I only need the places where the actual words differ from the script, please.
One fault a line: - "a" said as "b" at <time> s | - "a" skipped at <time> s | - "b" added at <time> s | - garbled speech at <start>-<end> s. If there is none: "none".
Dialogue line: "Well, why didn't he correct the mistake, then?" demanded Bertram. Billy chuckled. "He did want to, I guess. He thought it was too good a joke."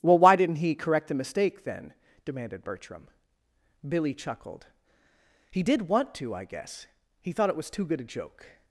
none